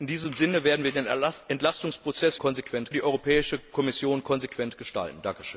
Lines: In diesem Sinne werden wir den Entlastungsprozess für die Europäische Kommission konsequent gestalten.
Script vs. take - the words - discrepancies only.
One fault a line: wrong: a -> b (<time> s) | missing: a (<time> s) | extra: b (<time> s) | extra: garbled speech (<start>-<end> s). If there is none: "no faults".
wrong: für -> konsequent (2.4 s)